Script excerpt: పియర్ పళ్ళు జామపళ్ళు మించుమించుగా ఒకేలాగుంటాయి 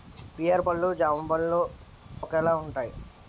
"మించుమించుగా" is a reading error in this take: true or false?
true